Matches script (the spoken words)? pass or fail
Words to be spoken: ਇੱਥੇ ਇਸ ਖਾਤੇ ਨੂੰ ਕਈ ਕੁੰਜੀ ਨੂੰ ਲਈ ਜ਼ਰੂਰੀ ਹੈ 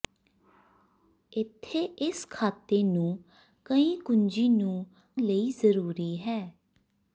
pass